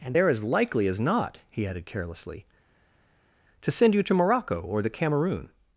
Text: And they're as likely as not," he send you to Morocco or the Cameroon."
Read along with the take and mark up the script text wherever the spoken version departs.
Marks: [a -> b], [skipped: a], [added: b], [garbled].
And they're as likely as not," he [added: added carelessly to] send you to Morocco or the Cameroon."